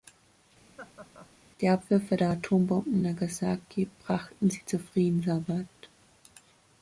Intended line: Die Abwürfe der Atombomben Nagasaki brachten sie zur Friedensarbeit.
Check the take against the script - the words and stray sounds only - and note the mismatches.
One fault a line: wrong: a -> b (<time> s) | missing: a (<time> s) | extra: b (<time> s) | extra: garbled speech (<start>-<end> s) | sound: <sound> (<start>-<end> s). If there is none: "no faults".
sound: laugh (0.8-1.3 s)